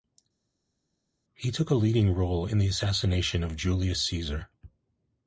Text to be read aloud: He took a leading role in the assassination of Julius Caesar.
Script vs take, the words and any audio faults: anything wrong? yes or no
no